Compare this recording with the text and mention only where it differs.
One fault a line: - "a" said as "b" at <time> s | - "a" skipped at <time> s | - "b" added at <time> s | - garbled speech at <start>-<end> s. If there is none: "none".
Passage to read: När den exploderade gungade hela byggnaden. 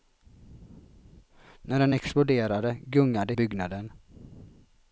- "hela" skipped at 3.3 s